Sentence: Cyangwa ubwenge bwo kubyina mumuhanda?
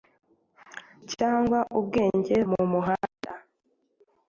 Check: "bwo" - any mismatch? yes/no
yes